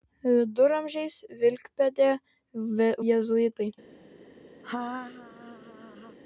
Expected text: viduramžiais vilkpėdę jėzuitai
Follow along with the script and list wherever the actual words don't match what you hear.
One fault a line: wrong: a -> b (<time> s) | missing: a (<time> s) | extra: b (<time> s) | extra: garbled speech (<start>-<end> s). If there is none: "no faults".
no faults